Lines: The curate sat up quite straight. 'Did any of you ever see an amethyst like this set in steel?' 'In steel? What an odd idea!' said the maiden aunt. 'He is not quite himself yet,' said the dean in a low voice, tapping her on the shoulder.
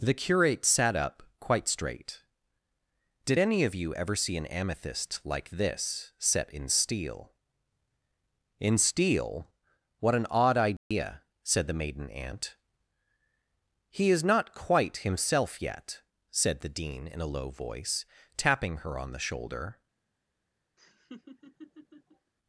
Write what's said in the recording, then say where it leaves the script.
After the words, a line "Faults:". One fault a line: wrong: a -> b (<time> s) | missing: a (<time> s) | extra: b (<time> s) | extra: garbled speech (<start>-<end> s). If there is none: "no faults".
The curate sat up quite straight. 'Did any of you ever see an amethyst like this set in steel?' 'In steel? What an odd idea!' said the maiden aunt. 'He is not quite himself yet,' said the dean in a low voice, tapping her on the shoulder.
Faults:
no faults